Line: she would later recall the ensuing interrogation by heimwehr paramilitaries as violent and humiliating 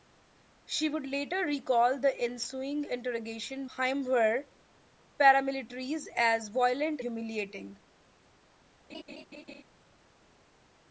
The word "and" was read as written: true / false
false